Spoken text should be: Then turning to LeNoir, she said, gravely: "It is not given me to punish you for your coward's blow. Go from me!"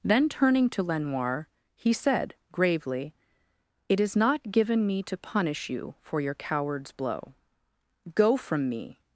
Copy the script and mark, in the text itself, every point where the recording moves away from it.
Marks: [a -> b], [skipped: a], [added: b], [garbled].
Then turning to LeNoir, [she -> he] said, gravely: "It is not given me to punish you for your coward's blow. Go from me!"